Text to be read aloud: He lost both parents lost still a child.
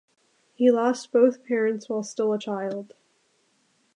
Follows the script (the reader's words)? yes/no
no